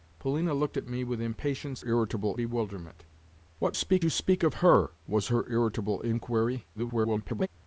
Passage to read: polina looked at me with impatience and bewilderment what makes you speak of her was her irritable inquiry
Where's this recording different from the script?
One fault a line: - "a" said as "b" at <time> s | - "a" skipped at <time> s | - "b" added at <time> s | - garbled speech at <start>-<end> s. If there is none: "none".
- "and" said as "irritable" at 1.8 s
- "makes" said as "speak" at 3.7 s
- garbled speech at 6.7-7.5 s